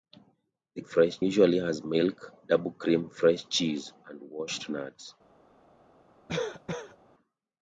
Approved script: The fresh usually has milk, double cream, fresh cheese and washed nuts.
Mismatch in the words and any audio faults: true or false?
true